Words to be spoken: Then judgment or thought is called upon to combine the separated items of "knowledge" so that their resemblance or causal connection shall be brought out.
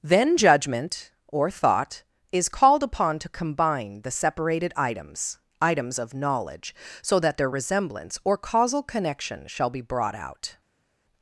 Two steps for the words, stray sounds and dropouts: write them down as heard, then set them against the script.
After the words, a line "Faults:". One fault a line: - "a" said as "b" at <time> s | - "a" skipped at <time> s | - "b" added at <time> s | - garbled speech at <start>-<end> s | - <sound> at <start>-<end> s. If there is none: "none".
Then judgment or thought is called upon to combine the separated items items of "knowledge" so that their resemblance or causal connection shall be brought out.
Faults:
- "items" added at 5.6 s